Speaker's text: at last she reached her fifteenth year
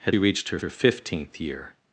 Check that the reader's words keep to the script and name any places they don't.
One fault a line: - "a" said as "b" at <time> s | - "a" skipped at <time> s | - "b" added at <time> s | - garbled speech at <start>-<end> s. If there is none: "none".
- "last" skipped at 0.2 s
- "her" added at 0.6 s